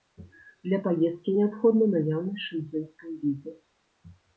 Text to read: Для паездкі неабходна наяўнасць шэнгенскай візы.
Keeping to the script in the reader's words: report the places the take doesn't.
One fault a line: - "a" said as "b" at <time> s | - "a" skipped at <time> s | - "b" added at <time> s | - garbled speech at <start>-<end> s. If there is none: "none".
none